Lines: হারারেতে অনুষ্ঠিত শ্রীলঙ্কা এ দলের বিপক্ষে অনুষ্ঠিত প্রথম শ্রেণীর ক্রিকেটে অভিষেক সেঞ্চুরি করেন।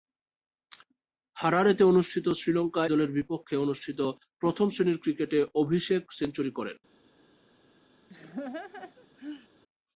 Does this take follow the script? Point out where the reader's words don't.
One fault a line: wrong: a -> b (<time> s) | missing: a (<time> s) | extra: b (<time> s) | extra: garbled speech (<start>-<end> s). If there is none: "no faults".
missing: এ (2.8 s)